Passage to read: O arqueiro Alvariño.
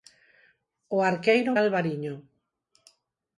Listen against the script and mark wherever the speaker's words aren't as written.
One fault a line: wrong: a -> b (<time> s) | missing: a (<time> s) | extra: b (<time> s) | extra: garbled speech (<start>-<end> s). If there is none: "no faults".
no faults